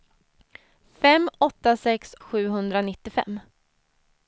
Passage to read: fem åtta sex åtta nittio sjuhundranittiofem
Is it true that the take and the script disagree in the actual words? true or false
true